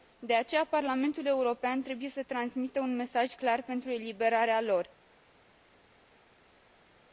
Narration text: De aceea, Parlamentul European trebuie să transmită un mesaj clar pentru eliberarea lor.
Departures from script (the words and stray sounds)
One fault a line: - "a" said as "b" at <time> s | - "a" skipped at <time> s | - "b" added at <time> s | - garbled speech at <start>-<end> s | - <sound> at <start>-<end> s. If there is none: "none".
none